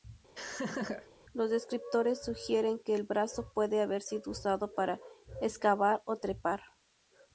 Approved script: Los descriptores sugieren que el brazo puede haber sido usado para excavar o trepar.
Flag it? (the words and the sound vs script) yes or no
yes